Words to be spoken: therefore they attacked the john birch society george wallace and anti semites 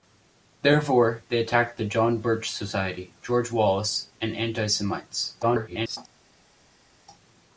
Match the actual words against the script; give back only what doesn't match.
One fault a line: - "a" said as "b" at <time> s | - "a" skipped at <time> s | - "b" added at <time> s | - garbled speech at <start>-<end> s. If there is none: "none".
- garbled speech at 5.4-6.0 s